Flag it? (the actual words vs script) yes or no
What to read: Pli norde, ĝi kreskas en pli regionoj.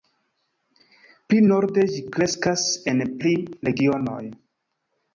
no